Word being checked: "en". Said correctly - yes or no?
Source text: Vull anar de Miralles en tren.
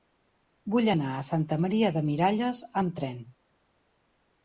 no